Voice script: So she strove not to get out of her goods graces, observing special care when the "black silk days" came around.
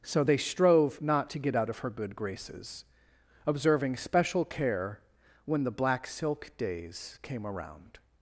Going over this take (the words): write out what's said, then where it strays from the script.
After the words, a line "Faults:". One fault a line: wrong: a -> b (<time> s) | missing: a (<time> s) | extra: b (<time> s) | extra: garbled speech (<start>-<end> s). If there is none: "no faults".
So they strove not to get out of her good graces, observing special care when the "black silk days" came around.
Faults:
wrong: she -> they (0.2 s)
wrong: goods -> good (1.9 s)